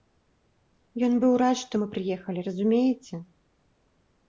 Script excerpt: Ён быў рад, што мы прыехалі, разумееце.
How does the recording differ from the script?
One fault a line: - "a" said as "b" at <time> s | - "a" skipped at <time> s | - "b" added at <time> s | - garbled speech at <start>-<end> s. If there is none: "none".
none